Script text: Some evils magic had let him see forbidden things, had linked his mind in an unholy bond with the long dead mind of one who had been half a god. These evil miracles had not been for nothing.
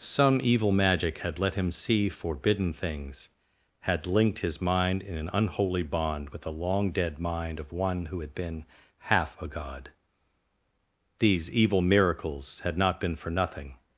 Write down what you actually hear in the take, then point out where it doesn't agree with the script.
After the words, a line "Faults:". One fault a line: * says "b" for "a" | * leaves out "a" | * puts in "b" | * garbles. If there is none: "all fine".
Some evil magic had let him see forbidden things, had linked his mind in an unholy bond with the long dead mind of one who had been half a god. These evil miracles had not been for nothing.
Faults:
* says "evil" for "evils"